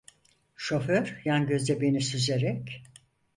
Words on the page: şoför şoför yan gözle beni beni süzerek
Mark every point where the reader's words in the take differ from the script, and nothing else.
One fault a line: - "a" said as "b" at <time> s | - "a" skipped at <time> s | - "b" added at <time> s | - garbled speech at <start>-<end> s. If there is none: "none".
- "şoför" skipped at 1.2 s
- "beni" skipped at 2.0 s